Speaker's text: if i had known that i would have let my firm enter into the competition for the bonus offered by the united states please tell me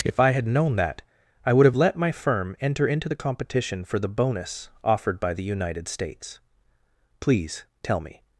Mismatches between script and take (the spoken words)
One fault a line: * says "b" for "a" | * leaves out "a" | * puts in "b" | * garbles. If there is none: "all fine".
all fine